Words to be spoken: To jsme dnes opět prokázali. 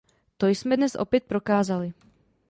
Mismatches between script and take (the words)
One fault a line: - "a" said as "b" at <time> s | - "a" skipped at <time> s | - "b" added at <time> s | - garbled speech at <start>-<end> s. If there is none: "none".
none